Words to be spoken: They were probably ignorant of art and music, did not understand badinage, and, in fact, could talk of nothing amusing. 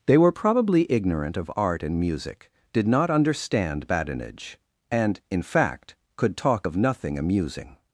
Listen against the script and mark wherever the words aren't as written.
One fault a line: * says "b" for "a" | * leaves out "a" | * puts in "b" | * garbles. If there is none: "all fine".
all fine